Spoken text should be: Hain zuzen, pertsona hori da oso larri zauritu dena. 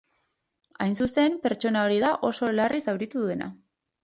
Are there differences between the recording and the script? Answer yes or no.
no